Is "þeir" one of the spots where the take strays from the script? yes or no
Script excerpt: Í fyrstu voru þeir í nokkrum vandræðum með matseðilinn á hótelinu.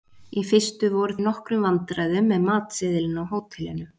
yes